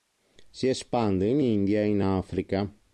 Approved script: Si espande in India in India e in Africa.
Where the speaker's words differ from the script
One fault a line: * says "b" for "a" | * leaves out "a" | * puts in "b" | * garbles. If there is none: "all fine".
* leaves out "in India"